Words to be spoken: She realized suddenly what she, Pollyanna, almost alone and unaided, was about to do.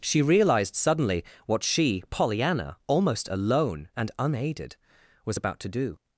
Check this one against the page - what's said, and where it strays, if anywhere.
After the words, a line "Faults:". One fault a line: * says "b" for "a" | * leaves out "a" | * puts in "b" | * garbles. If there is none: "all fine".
She realized suddenly what she, Pollyanna, almost alone and unaided, was about to do.
Faults:
all fine